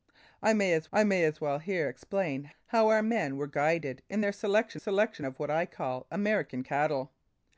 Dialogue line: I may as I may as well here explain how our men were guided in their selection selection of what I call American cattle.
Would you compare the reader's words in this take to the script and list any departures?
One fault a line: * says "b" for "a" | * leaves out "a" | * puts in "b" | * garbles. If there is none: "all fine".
all fine